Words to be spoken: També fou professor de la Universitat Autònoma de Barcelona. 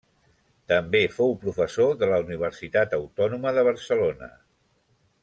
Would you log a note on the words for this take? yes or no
no